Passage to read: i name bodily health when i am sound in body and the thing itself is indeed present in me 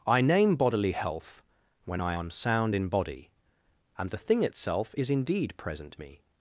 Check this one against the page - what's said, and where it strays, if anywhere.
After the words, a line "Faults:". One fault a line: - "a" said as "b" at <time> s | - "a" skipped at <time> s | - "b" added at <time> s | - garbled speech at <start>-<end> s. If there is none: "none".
i name bodily health when i am sound in body and the thing itself is indeed present me
Faults:
- "in" skipped at 6.0 s